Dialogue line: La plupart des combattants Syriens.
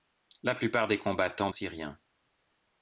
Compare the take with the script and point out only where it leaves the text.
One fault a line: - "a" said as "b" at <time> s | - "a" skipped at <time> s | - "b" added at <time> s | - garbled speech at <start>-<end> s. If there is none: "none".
none